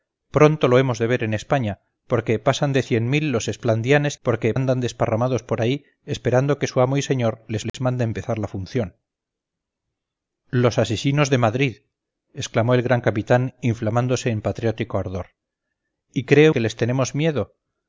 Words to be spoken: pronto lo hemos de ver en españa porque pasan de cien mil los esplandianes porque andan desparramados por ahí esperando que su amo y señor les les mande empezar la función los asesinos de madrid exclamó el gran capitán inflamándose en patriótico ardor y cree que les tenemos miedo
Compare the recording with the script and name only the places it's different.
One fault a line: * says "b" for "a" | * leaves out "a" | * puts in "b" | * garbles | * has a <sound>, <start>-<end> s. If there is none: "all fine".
* has a dropout, 7.7-7.7 s